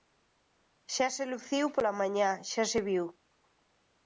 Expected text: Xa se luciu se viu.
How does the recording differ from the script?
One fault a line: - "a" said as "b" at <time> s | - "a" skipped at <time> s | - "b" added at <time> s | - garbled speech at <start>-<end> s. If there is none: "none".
- "pola mañá xa" added at 1.8 s